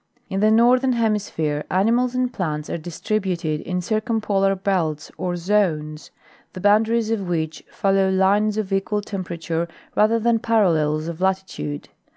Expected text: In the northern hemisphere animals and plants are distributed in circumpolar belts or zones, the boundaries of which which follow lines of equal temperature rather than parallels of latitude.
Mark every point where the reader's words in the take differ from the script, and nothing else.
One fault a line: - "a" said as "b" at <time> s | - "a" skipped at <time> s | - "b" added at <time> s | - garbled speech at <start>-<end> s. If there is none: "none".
- "which" skipped at 7.6 s